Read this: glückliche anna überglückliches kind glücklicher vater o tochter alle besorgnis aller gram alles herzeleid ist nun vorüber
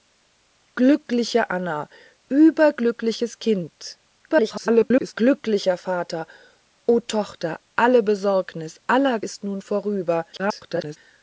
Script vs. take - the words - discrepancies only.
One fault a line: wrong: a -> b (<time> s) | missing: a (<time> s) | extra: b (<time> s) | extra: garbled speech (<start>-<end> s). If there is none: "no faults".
extra: garbled speech (4.3-5.1 s)
missing: gram alles herzeleid (9.2 s)
extra: garbled speech (10.3-11.0 s)